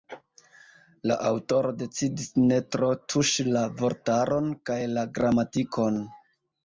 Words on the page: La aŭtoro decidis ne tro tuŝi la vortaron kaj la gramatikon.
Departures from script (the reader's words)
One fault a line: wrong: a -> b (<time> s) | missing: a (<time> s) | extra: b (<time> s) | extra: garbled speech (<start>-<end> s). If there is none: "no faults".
no faults